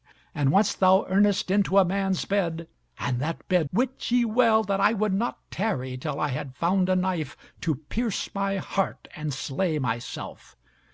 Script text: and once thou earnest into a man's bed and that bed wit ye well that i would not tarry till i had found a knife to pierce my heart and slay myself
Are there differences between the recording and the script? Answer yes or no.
no